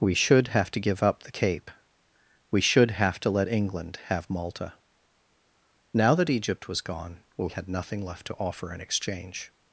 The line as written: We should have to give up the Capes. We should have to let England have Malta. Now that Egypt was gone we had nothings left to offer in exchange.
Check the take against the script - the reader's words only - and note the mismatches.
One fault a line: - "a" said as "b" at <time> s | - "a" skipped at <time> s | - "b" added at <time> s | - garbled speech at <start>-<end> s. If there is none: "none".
- "Capes" said as "Cape" at 1.3 s
- "nothings" said as "nothing" at 7.7 s